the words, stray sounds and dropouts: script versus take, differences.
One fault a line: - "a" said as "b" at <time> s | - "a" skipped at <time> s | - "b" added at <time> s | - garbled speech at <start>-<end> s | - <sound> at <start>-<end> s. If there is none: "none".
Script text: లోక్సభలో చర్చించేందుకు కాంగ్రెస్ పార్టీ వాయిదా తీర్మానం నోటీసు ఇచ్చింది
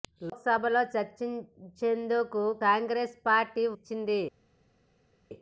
- "వాయిదా తీర్మానం నోటీసు" skipped at 3.6 s